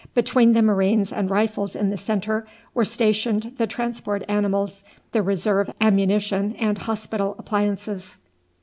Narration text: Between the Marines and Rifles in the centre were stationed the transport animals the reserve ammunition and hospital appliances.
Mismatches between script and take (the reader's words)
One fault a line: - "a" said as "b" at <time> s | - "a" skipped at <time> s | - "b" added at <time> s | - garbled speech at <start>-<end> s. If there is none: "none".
none